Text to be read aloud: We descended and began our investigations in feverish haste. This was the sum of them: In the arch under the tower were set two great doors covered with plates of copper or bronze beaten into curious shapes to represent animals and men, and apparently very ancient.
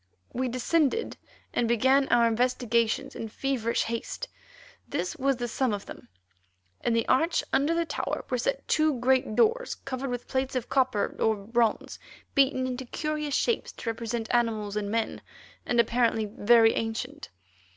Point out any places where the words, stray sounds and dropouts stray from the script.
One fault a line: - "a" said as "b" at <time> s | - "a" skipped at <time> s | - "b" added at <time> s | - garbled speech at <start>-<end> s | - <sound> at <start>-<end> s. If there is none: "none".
none